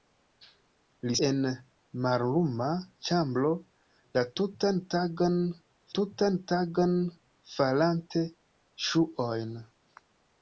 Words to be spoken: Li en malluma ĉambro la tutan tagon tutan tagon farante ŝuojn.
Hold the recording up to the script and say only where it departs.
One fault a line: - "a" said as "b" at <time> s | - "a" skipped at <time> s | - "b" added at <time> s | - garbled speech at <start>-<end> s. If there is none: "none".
none